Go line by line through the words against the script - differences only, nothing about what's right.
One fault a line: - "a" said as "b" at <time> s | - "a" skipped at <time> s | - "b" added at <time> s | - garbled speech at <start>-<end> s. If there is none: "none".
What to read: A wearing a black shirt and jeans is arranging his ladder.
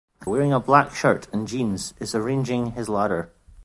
none